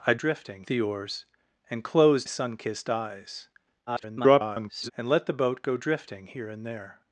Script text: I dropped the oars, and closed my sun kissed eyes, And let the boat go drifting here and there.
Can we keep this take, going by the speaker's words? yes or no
no